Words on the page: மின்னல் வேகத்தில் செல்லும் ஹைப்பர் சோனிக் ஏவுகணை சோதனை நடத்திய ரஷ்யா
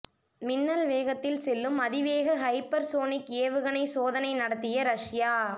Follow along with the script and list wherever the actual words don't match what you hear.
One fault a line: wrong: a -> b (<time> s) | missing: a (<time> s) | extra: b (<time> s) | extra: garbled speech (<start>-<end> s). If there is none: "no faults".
extra: அதிவேக (1.8 s)